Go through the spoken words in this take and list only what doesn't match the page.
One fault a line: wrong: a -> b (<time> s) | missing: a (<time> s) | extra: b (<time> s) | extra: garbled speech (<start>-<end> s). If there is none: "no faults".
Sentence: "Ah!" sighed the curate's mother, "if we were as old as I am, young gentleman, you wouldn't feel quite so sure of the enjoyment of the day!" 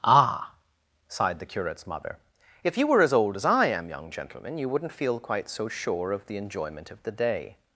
wrong: we -> you (2.8 s)